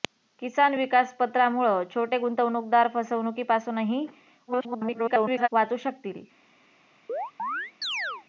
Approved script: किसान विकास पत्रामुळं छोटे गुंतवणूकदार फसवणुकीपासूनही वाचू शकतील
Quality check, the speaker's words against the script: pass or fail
fail